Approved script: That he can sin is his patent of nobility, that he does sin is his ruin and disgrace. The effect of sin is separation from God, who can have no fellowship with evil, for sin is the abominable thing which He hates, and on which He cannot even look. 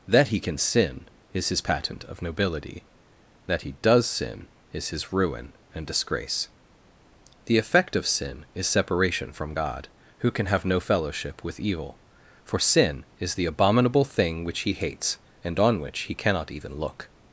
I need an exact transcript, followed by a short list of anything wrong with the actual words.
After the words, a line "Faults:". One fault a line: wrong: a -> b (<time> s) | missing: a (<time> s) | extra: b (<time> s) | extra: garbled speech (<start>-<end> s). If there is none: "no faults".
That he can sin is his patent of nobility, that he does sin is his ruin and disgrace. The effect of sin is separation from God, who can have no fellowship with evil, for sin is the abominable thing which He hates, and on which He cannot even look.
Faults:
no faults